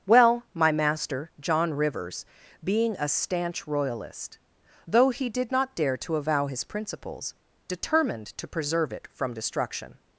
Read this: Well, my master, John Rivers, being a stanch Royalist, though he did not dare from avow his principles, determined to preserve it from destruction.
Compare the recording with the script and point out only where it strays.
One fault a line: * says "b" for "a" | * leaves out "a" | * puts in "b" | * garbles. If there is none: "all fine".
* says "to" for "from"